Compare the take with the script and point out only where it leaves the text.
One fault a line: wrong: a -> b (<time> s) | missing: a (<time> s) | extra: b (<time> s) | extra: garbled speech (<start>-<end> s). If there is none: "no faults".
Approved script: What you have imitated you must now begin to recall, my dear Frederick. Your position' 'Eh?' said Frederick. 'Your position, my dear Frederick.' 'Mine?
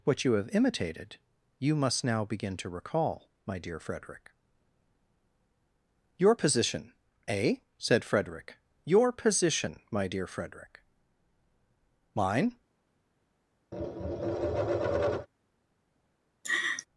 no faults